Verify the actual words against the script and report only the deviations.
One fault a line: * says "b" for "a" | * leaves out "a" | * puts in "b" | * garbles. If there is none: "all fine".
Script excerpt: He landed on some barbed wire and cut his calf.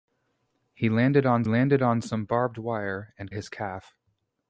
* puts in "landed on"
* leaves out "cut"